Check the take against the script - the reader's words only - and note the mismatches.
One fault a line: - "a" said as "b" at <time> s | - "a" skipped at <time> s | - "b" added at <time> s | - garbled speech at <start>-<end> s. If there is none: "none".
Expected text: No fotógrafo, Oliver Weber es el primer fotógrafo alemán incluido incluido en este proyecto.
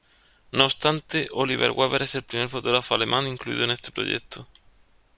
- "fotógrafo" said as "obstante" at 0.7 s
- "incluido" skipped at 3.6 s